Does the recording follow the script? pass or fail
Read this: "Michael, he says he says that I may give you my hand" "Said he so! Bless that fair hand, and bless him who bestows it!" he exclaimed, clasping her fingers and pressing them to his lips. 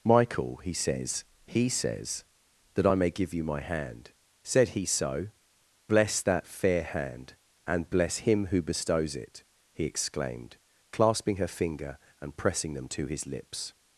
fail